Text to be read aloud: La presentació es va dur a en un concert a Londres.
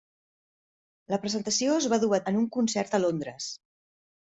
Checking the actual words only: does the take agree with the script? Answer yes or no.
yes